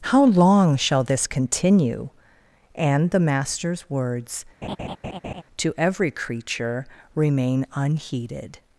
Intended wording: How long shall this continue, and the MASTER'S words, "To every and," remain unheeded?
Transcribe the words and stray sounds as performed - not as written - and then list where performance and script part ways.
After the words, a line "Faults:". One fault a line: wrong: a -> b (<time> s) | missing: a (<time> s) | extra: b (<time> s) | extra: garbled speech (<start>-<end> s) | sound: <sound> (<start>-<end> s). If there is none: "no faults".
How long shall this continue, and the MASTER'S words, "To every creature," remain unheeded?
Faults:
sound: laugh (4.6-5.4 s)
wrong: and -> creature (6.1 s)